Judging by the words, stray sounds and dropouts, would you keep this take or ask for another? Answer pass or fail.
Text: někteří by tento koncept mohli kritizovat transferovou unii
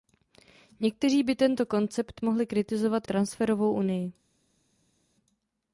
pass